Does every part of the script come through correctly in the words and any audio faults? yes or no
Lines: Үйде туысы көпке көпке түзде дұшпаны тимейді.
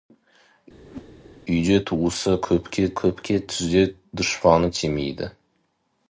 no